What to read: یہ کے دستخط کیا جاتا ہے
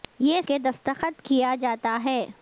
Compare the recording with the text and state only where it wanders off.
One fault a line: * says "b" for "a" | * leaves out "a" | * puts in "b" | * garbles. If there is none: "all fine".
all fine